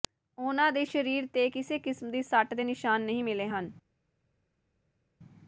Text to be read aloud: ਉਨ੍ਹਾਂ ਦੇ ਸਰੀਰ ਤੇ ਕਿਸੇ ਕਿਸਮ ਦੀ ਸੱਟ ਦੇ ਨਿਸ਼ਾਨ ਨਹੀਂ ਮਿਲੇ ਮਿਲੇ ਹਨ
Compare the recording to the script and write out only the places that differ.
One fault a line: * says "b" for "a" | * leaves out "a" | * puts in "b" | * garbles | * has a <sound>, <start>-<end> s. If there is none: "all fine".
* leaves out "ਮਿਲੇ"